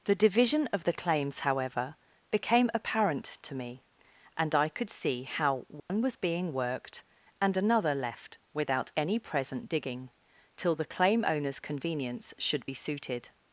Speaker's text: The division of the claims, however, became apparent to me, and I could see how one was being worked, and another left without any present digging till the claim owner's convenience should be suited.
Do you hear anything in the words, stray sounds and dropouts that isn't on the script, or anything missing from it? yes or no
yes